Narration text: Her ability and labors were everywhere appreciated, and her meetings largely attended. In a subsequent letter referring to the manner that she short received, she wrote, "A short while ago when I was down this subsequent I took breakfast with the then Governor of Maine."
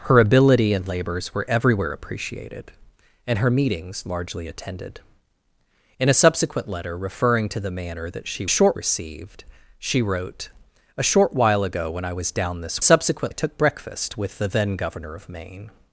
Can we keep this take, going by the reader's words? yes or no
yes